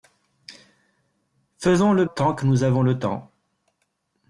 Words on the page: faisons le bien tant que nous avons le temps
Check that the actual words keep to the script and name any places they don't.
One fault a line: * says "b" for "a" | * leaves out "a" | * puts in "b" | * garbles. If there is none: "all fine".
* leaves out "bien"